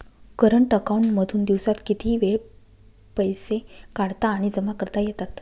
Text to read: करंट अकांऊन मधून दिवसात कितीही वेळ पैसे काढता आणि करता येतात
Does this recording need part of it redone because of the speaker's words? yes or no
yes